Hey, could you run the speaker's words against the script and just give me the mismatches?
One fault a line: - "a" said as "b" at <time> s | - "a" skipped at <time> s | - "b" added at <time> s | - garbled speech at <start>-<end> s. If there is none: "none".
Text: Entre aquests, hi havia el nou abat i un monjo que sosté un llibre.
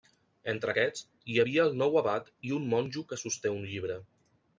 none